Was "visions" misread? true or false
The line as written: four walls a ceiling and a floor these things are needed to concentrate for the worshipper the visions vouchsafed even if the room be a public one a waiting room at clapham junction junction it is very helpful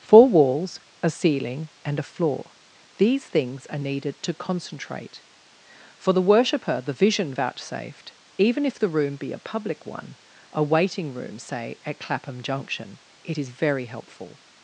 true